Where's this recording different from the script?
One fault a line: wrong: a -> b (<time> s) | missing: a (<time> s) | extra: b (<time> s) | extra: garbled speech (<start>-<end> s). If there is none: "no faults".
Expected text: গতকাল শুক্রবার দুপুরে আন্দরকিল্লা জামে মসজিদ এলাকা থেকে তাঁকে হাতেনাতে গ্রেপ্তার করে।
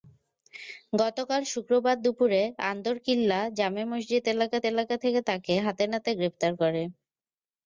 extra: এলাকা (4.7 s)